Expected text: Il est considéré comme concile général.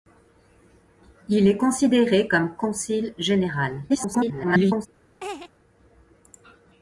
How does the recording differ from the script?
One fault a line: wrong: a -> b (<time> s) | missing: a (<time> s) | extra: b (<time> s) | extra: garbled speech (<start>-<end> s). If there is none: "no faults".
extra: garbled speech (3.9-4.9 s)